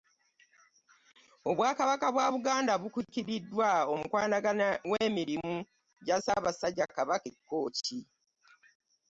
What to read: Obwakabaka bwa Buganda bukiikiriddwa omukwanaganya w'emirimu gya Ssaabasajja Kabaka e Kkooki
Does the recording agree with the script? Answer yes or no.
yes